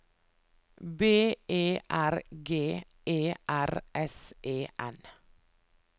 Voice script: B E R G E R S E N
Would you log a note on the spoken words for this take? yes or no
no